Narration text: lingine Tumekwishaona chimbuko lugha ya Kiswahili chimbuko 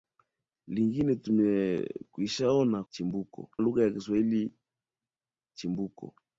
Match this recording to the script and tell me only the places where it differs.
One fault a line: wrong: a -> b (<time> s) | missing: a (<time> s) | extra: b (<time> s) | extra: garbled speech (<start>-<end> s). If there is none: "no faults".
no faults